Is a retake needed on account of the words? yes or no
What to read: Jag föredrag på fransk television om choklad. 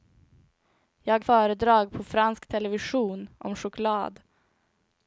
no